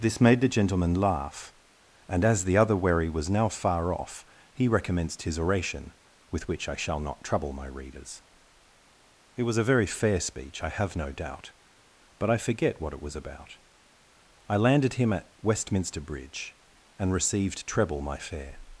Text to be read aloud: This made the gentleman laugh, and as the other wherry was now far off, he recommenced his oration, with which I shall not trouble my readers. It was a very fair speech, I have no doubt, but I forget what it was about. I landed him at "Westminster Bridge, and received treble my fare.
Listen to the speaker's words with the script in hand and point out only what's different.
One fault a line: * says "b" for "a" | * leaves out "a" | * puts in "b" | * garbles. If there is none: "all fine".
all fine